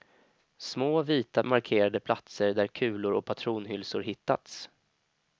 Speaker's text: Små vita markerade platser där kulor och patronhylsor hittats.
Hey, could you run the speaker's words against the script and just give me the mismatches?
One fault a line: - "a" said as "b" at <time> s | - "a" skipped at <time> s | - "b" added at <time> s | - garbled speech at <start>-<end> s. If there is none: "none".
none